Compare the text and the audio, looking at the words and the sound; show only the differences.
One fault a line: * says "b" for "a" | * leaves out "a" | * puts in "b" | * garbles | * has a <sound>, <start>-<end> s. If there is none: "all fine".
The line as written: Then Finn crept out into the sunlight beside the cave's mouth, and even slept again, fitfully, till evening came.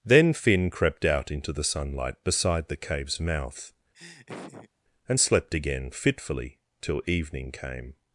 * has a laugh, 3.9-4.7 s
* leaves out "even"